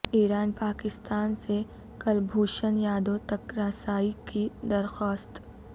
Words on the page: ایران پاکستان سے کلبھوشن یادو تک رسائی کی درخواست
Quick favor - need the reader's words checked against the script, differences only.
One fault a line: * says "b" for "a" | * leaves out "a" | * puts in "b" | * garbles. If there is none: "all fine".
all fine